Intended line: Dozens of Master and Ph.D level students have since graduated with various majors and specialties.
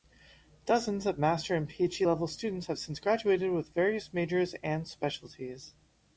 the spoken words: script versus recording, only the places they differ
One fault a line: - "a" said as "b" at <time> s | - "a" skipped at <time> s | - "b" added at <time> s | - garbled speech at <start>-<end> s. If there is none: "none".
none